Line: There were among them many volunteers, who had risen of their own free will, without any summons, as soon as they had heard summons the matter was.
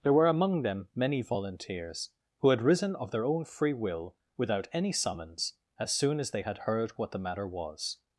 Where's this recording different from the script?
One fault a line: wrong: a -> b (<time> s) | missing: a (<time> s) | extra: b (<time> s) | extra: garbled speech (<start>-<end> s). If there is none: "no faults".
wrong: summons -> what (6.9 s)